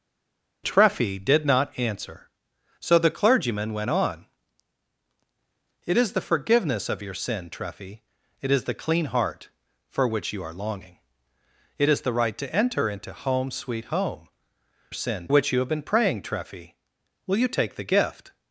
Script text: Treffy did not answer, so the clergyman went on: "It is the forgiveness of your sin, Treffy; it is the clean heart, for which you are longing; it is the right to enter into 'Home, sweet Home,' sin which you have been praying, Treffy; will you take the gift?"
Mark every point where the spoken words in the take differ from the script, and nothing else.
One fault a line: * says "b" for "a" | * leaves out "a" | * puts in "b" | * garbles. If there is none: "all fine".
all fine